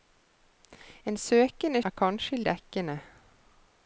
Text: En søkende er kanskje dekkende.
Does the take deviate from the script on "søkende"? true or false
false